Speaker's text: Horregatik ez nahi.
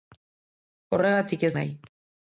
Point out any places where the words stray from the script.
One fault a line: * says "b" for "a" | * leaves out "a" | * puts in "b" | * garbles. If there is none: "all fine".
all fine